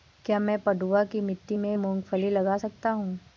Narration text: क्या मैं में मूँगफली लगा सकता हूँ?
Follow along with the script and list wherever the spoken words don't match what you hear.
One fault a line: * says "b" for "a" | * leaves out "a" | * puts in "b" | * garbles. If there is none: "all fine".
* puts in "पडुआ की मिट्टी"